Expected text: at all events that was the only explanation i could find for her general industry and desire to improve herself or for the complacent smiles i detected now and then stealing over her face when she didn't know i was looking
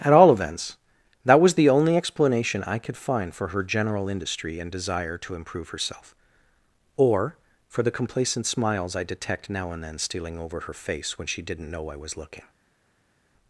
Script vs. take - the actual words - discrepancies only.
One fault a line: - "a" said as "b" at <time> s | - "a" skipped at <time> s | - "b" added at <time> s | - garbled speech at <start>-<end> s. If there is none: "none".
- "detected" said as "detect" at 9.0 s